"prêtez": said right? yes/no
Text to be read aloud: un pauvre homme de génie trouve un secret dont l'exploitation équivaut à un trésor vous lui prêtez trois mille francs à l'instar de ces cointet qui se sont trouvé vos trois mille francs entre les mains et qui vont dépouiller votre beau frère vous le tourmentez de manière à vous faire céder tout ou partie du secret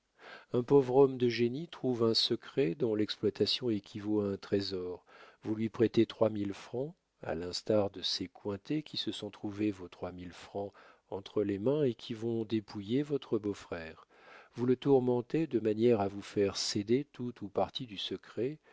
yes